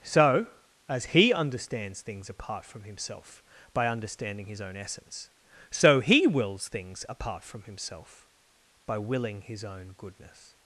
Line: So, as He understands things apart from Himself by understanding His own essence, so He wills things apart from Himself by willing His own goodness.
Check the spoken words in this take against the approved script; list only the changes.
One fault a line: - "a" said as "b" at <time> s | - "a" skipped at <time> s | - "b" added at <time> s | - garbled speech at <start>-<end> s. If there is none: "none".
none